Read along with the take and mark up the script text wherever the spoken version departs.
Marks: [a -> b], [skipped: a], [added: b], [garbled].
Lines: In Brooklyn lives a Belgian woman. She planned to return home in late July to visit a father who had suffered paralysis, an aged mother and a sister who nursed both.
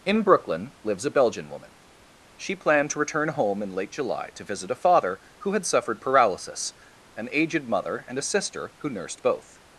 In Brooklyn lives a Belgian woman. She planned to return home in late July to visit a father who had suffered paralysis, an aged mother and a sister who nursed both.